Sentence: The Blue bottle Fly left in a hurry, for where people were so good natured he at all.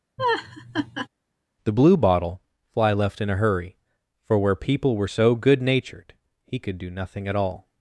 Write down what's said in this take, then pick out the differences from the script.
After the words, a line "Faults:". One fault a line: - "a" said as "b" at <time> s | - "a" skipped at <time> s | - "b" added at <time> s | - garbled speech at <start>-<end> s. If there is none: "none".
The Blue bottle Fly left in a hurry, for where people were so good natured he could do nothing at all.
Faults:
- "could do nothing" added at 6.6 s